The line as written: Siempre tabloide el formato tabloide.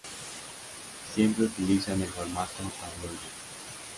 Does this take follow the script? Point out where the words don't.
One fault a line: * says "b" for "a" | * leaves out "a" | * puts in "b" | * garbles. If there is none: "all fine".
* says "utilizan" for "tabloide"